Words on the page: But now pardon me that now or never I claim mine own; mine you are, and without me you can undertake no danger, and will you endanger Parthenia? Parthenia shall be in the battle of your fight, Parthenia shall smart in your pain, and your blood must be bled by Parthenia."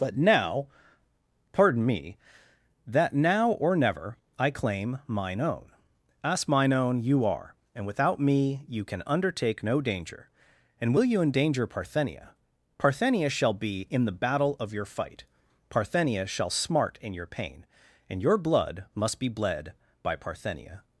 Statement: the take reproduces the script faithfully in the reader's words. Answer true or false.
false